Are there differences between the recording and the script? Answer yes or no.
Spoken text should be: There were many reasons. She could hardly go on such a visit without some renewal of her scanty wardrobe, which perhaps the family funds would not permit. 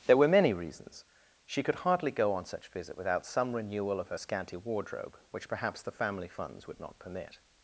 yes